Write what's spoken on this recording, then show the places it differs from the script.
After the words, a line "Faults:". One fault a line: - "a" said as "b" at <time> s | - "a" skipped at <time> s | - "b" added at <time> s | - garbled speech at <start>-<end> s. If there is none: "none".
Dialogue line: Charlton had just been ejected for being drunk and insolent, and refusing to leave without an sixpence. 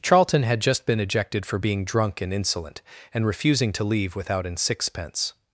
Charlton had just been ejected for being drunk and insolent, and refusing to leave without an sixpence.
Faults:
none